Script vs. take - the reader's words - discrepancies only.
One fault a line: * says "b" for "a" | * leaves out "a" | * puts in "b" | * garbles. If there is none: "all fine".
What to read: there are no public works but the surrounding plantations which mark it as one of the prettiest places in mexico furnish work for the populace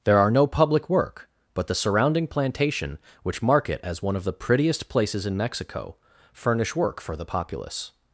* says "work" for "works"
* says "plantation" for "plantations"